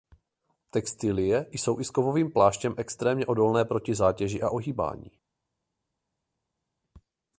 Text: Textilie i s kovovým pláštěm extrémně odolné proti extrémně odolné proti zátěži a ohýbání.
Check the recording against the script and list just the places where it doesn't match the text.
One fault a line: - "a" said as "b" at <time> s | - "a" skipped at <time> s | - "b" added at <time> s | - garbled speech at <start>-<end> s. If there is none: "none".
- "jsou" added at 1.5 s
- "extrémně odolné proti" skipped at 4.0 s